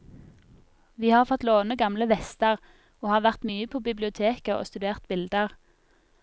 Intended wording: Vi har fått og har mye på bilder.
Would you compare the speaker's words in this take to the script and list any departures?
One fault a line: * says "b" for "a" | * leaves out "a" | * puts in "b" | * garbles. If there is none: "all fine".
* puts in "låne gamle vester"
* puts in "vært"
* puts in "biblioteket og studert"